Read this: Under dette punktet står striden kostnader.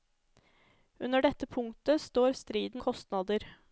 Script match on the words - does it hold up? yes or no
yes